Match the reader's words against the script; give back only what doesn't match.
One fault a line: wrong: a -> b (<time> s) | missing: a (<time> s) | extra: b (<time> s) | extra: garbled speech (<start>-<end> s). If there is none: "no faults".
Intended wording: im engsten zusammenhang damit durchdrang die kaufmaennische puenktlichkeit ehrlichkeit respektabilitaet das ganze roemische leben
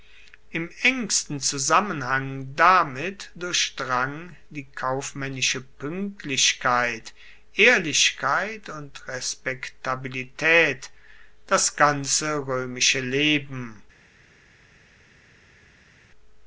extra: und (8.7 s)